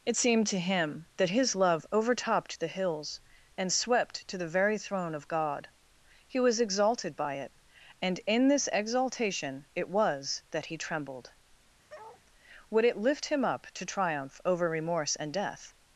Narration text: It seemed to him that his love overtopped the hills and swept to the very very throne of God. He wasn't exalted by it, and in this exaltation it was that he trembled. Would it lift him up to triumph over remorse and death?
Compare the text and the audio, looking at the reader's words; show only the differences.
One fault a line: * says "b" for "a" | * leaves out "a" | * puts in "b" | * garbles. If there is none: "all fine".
* leaves out "very"
* says "was" for "wasn't"